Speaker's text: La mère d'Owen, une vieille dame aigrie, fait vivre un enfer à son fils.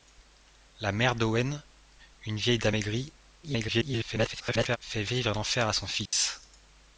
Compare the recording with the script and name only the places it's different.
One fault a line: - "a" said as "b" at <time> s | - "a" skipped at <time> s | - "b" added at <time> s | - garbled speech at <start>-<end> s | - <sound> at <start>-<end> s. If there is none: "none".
- garbled speech at 3.4-4.8 s
- dropout at 6.1-6.1 s